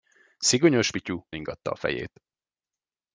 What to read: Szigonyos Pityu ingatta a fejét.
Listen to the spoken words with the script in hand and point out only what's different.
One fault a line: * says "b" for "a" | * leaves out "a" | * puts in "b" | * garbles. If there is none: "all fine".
all fine